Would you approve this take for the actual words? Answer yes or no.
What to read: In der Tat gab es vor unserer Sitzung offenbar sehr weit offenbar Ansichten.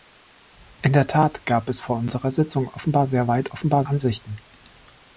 yes